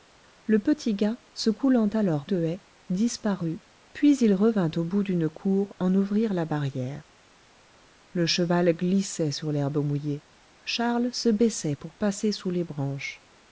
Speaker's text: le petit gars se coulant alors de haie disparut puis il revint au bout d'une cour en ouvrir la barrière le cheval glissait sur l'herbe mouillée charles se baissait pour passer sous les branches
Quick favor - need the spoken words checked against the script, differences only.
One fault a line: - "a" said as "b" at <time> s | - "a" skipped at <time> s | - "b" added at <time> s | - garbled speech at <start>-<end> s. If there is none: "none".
none